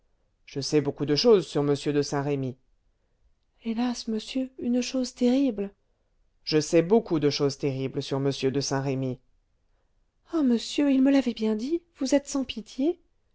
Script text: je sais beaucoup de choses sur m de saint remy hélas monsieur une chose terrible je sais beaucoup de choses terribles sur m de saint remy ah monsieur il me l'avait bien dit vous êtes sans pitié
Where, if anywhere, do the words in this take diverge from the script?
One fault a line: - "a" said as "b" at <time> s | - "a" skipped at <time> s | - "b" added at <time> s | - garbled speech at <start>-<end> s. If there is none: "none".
none